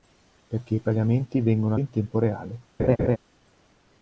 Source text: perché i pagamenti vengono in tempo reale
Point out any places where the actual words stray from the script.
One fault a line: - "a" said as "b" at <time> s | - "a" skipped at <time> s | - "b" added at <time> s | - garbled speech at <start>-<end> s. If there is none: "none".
none